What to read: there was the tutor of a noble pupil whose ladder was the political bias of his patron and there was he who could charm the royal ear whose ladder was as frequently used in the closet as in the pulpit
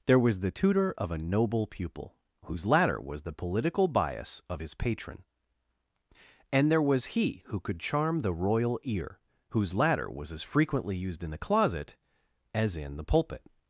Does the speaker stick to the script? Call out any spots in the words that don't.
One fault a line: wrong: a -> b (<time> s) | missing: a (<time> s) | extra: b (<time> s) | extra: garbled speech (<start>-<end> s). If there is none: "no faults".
no faults